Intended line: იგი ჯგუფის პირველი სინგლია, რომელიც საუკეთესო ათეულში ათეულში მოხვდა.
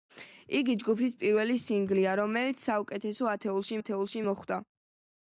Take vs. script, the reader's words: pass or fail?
pass